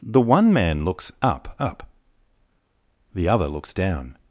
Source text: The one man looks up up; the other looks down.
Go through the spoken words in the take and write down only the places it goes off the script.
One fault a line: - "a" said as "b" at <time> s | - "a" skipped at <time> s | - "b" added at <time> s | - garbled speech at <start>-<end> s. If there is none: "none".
none